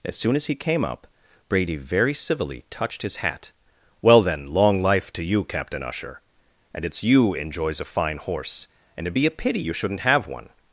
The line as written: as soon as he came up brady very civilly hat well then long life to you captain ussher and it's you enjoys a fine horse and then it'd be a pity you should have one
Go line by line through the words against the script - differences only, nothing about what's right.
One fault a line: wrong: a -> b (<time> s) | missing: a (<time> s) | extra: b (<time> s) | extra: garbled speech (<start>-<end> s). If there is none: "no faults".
extra: touched his (2.7 s)
missing: then (9.1 s)
wrong: should -> shouldn't (9.7 s)